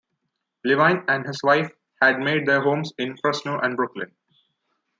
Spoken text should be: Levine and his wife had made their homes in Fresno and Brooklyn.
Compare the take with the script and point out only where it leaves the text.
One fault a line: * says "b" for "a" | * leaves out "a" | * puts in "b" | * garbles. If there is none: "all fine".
all fine